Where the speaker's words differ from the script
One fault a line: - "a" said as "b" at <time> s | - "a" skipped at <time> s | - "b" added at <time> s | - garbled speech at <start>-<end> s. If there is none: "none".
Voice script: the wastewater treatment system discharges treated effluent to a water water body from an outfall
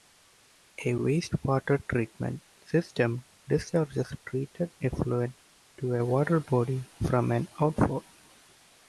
- "the" said as "a" at 0.8 s
- "water" skipped at 6.4 s